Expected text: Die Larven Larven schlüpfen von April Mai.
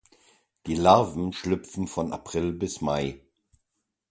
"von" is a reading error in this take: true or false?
false